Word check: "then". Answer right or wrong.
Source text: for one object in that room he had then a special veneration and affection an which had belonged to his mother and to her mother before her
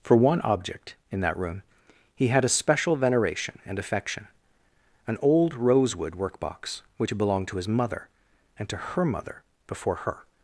wrong